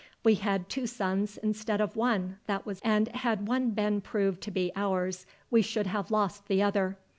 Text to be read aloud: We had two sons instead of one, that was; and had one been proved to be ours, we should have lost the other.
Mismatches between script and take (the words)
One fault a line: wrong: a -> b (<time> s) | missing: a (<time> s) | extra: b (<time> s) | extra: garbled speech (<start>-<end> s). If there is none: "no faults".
no faults